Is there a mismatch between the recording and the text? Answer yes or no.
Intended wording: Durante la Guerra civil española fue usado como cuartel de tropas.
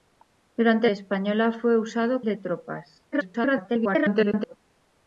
yes